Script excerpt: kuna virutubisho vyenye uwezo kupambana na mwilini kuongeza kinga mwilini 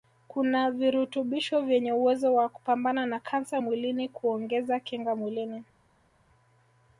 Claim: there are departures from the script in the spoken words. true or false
true